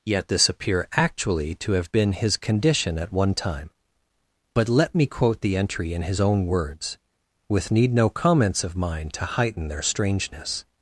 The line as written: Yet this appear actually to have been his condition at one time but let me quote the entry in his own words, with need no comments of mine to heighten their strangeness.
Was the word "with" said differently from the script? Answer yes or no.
no